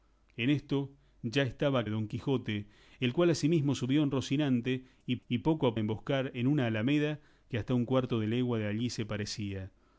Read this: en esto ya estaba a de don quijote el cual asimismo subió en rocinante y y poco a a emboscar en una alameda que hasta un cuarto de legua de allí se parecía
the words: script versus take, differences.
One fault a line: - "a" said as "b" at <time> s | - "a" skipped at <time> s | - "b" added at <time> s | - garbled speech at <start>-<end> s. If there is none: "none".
none